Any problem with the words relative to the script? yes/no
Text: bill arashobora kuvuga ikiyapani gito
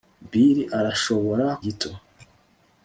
yes